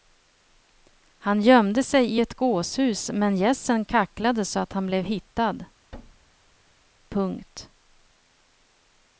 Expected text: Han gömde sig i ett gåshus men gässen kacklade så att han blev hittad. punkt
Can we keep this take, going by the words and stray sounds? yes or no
no